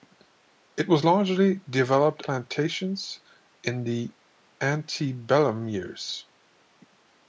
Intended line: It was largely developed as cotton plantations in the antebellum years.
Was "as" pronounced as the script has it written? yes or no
no